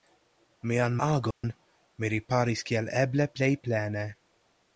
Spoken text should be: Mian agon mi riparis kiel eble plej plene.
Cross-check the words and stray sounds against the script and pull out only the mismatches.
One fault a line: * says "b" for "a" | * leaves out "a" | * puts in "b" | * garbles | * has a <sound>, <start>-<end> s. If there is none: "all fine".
* has a dropout, 1.3-1.4 s